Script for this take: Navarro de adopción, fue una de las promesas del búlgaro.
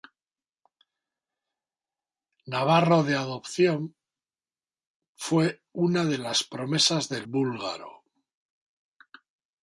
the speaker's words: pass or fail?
pass